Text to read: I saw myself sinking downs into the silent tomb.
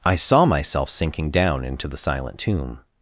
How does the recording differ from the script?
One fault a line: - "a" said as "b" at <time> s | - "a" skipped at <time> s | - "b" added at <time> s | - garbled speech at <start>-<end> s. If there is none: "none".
- "downs" said as "down" at 1.3 s